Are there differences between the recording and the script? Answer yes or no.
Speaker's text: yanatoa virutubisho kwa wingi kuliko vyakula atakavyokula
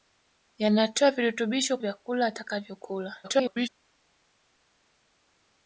yes